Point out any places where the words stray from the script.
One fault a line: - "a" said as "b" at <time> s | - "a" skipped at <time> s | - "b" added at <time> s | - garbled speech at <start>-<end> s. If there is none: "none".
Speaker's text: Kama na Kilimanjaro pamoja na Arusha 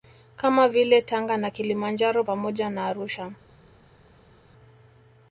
- "vile Tanga" added at 0.7 s